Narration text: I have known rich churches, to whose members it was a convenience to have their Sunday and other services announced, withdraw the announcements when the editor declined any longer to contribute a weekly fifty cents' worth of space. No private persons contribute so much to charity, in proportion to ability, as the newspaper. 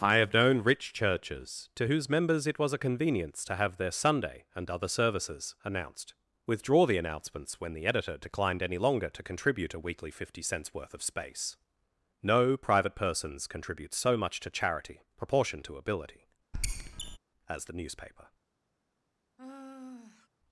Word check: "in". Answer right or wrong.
wrong